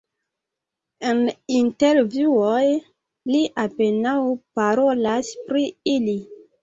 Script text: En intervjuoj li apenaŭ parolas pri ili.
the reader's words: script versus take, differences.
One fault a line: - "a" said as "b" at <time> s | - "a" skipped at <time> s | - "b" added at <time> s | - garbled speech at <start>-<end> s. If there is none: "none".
none